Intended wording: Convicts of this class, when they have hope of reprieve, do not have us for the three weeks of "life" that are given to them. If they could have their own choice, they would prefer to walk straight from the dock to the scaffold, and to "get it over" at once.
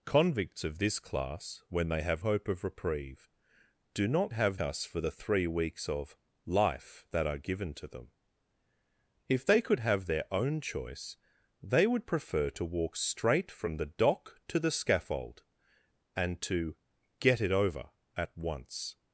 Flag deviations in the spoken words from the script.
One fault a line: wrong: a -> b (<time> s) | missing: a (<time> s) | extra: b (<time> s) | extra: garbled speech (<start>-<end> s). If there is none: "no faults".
no faults